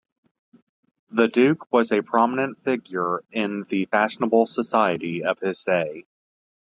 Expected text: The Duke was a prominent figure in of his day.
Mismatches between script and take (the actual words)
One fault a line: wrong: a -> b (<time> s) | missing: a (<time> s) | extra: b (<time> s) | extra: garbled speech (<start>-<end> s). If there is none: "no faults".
extra: the fashionable society (3.7 s)